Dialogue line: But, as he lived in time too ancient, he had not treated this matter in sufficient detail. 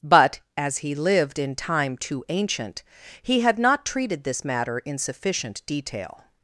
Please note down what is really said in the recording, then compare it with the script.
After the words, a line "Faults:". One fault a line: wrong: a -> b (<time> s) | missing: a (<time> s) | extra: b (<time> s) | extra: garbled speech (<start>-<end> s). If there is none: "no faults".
But, as he lived in time too ancient, he had not treated this matter in sufficient detail.
Faults:
no faults